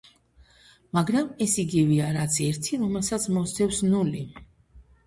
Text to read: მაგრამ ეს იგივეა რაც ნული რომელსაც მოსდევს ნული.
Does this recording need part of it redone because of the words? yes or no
yes